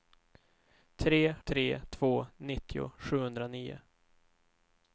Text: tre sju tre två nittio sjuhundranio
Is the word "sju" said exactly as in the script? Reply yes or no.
no